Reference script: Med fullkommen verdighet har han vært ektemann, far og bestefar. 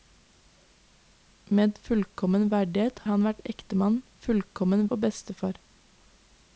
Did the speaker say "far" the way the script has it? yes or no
no